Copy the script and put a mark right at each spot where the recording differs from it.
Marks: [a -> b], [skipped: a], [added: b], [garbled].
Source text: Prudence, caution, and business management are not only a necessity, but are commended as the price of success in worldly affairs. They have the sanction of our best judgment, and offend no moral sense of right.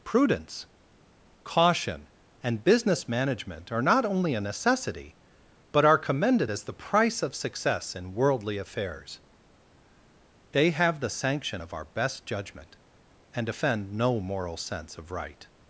Prudence, caution, and business management are not only a necessity, but are commended as the price of success in worldly affairs. They have the sanction of our best judgment, and offend no moral sense of right.